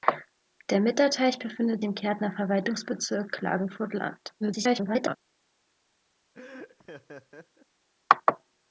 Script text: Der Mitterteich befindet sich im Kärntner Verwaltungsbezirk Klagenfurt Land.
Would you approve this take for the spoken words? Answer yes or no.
no